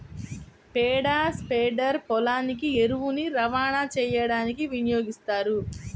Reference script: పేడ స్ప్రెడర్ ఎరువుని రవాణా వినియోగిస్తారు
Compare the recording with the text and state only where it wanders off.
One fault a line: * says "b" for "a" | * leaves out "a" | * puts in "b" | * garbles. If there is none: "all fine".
* puts in "పొలానికి"
* puts in "చేయడానికి"